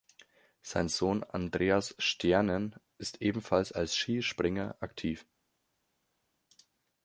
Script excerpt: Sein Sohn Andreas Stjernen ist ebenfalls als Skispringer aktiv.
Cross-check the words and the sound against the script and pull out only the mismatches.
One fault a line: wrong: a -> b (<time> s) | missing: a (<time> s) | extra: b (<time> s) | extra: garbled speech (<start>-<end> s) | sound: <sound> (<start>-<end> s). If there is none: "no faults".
no faults